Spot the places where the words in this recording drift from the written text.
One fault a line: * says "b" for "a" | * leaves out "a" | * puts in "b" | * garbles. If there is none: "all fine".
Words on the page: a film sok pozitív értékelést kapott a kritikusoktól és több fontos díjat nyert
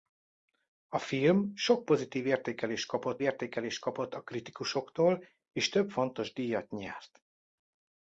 * puts in "értékelést kapott"